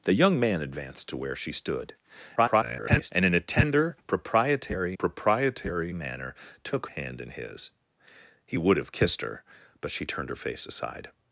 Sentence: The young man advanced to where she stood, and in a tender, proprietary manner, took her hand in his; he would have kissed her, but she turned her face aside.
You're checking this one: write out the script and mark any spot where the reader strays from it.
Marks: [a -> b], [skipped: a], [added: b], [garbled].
The young man advanced to where she stood, [garbled] and in a tender, proprietary [added: proprietary] manner, took [skipped: her] hand in his; he would have kissed her, but she turned her face aside.